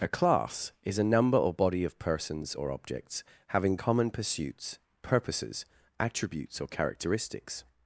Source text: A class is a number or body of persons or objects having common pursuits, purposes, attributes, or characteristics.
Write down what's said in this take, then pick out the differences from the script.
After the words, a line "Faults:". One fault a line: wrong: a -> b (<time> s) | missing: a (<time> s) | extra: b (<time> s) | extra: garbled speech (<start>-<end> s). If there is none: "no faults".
A class is a number or body of persons or objects having common pursuits, purposes, attributes, or characteristics.
Faults:
no faults